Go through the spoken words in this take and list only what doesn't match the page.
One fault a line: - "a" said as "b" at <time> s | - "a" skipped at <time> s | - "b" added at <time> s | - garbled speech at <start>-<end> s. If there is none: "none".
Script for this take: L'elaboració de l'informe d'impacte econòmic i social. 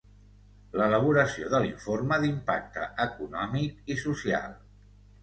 none